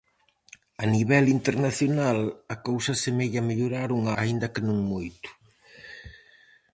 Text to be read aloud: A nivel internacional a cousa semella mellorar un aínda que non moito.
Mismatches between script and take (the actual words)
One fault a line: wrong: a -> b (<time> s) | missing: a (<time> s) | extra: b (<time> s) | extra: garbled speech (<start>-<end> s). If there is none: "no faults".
no faults